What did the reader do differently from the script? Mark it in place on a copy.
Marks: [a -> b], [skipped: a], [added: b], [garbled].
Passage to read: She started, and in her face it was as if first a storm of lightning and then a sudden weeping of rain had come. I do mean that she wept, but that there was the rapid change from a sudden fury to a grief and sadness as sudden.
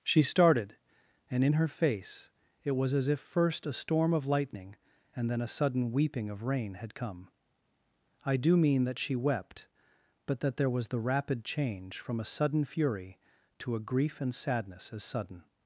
She started, and in her face it was as if first a storm of lightning and then a sudden weeping of rain had come. I do mean that she wept, but that there was the rapid change from a sudden fury to a grief and sadness as sudden.